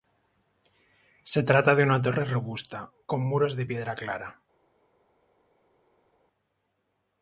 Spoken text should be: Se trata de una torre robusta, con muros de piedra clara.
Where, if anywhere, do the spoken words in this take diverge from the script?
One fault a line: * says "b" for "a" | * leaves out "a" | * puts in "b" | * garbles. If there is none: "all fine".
all fine